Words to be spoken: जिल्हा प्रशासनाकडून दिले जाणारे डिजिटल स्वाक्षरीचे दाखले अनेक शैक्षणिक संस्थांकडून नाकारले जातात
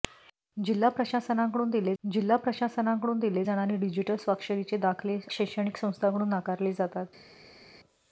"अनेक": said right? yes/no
no